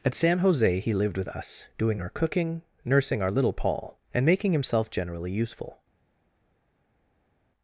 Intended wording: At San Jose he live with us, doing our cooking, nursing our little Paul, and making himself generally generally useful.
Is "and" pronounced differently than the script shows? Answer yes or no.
no